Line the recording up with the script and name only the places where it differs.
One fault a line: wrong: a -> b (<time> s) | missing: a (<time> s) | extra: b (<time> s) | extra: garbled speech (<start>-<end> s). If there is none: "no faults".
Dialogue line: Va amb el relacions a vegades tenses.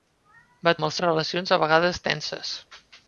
no faults